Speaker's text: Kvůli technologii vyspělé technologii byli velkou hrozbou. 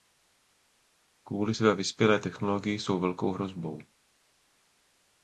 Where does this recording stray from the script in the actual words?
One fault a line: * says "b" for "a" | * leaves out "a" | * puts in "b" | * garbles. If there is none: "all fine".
* says "své" for "technologii"
* says "jsou" for "byli"